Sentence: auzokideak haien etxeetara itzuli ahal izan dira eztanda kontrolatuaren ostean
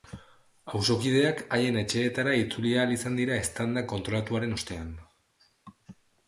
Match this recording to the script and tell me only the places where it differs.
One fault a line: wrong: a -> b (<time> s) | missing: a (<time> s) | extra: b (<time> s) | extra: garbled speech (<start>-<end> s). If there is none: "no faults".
no faults